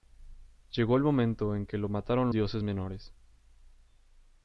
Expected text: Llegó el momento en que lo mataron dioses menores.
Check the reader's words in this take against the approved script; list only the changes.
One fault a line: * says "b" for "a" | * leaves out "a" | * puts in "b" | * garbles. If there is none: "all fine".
all fine